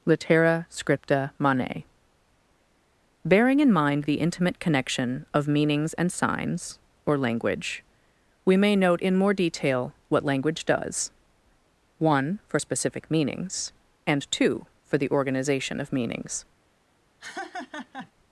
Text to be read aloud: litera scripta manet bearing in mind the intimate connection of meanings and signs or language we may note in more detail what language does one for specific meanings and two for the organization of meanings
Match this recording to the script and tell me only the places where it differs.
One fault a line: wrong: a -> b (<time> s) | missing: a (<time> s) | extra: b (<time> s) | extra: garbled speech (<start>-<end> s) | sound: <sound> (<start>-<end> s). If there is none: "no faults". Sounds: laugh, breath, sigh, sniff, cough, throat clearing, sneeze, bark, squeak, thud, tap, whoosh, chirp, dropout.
sound: laugh (17.2-18.1 s)